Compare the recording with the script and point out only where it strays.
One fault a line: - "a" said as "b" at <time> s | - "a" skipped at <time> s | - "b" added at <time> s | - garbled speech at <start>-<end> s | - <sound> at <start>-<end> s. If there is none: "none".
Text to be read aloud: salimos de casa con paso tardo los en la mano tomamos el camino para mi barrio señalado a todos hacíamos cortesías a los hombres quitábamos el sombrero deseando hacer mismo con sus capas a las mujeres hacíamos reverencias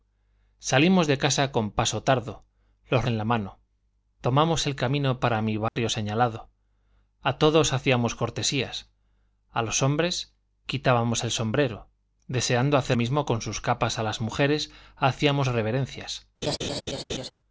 - dropout at 5.7-5.8 s
- laugh at 16.4-17.3 s